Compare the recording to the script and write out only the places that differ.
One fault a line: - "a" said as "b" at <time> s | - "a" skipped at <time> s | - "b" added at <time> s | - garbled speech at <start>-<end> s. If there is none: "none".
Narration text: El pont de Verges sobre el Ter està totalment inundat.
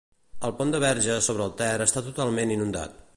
none